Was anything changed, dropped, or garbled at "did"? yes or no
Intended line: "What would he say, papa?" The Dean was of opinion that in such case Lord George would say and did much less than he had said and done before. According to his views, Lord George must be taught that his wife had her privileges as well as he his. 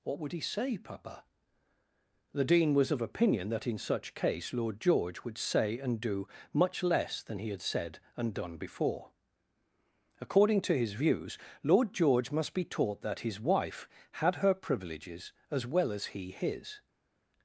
yes